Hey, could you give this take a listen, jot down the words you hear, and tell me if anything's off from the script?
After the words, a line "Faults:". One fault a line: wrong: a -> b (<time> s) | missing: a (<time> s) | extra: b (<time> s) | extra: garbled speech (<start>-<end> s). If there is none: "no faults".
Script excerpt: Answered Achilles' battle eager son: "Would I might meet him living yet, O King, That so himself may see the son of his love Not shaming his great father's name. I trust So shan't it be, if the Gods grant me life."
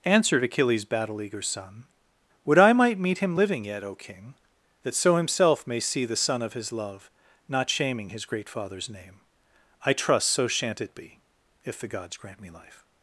Answered Achilles' battle eager son: "Would I might meet him living yet, O King, That so himself may see the son of his love Not shaming his great father's name. I trust So shan't it be, if the Gods grant me life."
Faults:
no faults